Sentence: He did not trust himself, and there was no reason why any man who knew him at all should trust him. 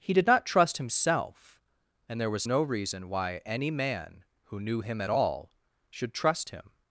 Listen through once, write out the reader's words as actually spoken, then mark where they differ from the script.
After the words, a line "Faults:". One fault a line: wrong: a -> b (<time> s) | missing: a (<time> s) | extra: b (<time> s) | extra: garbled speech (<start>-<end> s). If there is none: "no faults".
He did not trust himself, and there was no reason why any man who knew him at all should trust him.
Faults:
no faults